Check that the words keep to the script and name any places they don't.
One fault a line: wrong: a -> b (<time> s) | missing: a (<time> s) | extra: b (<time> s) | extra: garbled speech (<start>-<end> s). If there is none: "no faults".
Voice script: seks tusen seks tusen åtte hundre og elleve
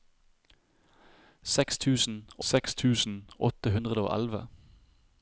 no faults